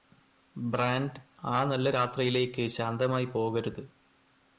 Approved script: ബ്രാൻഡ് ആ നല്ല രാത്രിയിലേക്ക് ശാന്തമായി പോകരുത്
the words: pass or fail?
pass